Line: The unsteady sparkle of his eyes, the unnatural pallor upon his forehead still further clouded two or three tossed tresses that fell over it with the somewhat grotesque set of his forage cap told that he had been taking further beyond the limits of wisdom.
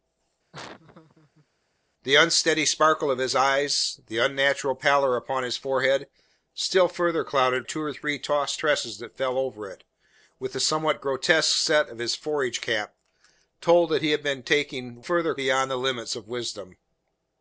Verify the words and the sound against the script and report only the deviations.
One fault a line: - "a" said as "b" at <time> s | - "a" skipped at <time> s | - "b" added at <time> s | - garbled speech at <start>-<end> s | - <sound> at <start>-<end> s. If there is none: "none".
- laugh at 0.5-1.5 s